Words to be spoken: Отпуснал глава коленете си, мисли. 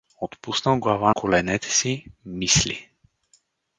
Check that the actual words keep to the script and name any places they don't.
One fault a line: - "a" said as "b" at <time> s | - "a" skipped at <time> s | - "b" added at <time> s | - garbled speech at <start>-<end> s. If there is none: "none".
none